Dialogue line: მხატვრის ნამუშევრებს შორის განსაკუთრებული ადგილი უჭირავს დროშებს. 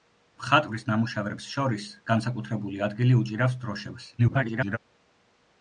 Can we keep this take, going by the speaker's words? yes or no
no